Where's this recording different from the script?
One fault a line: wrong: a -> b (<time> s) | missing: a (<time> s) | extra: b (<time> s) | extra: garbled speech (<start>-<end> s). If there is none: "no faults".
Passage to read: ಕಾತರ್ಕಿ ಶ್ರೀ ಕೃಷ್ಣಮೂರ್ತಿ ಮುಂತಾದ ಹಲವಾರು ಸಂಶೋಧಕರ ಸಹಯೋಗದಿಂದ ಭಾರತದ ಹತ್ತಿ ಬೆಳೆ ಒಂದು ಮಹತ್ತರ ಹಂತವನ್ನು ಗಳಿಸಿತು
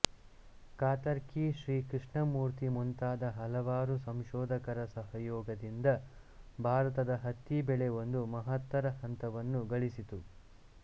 no faults